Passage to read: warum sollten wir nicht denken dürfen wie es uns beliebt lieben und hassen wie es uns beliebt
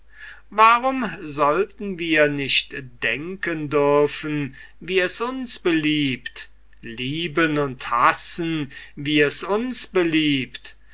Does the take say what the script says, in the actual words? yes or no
yes